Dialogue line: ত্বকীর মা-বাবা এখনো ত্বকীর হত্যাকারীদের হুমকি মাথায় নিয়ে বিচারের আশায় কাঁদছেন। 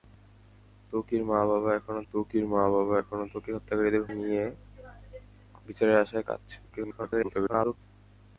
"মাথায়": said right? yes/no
no